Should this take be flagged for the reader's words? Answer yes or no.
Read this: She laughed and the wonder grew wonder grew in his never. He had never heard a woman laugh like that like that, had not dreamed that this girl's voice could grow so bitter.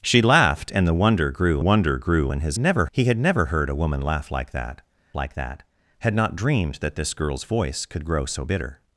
no